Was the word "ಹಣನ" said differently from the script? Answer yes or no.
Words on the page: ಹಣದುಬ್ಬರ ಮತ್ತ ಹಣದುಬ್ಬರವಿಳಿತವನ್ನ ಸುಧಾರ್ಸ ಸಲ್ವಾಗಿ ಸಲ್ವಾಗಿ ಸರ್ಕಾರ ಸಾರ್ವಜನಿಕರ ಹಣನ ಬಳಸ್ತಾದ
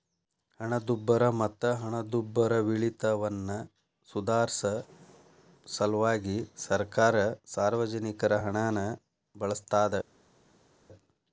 no